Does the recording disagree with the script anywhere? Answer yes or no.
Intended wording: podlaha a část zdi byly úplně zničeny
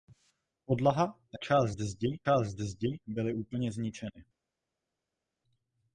yes